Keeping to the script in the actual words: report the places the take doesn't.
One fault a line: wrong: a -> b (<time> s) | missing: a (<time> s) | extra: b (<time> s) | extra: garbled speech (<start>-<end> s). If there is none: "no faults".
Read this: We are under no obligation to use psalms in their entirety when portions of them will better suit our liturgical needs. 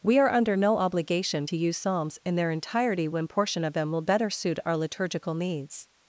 wrong: portions -> portion (3.3 s)